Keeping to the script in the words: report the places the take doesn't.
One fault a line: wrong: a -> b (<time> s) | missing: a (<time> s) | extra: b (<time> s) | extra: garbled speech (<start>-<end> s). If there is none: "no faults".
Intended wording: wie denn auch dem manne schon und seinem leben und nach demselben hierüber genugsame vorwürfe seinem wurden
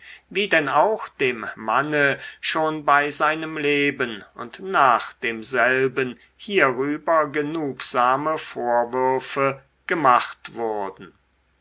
wrong: und -> bei (2.8 s)
wrong: seinem -> gemacht (9.9 s)